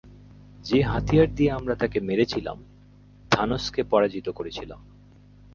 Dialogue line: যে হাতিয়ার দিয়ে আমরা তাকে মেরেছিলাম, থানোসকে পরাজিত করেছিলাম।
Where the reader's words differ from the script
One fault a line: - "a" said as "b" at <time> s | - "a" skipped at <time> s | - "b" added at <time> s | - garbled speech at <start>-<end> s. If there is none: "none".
none